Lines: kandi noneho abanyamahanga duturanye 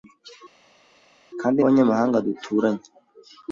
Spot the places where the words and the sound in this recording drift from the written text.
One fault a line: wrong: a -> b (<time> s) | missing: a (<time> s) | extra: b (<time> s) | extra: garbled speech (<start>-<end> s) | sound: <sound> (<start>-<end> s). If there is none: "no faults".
missing: noneho (1.6 s)